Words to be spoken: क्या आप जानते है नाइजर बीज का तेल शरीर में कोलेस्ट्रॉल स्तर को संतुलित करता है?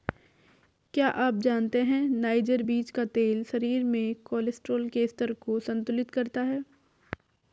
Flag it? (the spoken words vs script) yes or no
yes